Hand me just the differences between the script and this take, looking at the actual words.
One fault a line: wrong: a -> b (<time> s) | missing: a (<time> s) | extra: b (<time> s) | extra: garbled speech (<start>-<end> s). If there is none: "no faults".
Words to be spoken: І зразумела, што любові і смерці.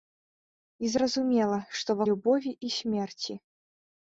no faults